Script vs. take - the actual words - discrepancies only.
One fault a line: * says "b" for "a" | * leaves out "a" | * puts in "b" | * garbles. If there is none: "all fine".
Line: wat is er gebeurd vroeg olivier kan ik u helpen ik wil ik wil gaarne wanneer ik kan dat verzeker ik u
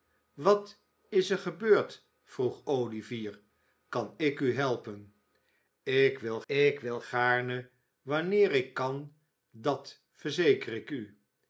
all fine